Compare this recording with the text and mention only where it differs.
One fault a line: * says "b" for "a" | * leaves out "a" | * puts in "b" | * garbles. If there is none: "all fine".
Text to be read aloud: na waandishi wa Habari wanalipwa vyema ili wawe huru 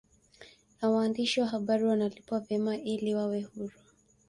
all fine